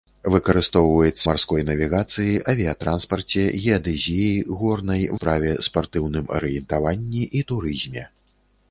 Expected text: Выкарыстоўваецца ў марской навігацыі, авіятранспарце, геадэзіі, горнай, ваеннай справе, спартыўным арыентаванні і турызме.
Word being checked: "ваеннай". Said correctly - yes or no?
no